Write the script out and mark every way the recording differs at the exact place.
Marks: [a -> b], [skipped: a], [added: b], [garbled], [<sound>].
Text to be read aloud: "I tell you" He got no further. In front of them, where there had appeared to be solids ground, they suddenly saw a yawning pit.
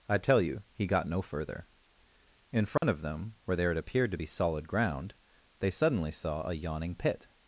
"I tell you" He got no further. In front [dropout] of them, where there had appeared to be [solids -> solid] ground, they suddenly saw a yawning pit.